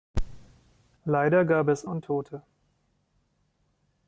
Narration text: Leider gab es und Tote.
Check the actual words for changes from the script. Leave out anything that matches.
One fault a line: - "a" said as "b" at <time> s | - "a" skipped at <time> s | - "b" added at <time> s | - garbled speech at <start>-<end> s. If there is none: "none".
none